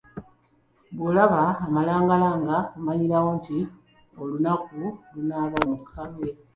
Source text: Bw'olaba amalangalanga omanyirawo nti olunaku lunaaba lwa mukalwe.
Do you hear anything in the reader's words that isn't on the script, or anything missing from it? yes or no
yes